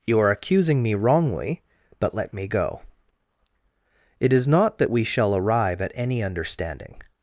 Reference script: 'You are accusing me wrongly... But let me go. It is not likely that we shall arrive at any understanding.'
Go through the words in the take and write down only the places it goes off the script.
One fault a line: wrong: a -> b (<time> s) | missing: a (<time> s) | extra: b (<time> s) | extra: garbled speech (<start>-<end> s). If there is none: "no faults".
missing: likely (4.8 s)